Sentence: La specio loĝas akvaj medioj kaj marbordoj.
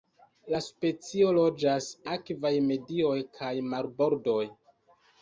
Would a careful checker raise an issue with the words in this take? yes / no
no